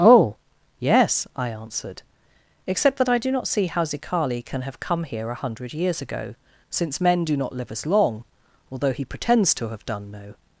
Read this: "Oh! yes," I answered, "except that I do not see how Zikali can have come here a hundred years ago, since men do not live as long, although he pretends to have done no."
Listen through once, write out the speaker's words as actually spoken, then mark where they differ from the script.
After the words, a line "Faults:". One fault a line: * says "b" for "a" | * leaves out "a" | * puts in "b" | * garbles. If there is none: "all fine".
"Oh! yes," I answered, "except that I do not see how Zikali can have come here a hundred years ago, since men do not live as long, although he pretends to have done no."
Faults:
all fine